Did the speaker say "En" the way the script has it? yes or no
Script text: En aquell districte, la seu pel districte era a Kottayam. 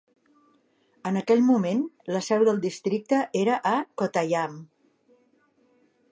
yes